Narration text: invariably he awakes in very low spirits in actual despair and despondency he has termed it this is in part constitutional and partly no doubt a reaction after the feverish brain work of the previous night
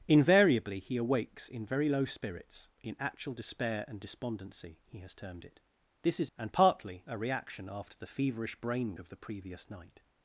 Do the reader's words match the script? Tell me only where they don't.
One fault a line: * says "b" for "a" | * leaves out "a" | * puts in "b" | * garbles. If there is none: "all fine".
* leaves out "in part constitutional"
* leaves out "no doubt"
* leaves out "work"